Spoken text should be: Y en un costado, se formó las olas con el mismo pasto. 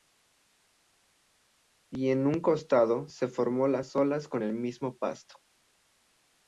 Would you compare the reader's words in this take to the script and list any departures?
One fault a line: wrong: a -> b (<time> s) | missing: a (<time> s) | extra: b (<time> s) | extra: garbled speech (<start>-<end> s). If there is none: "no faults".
no faults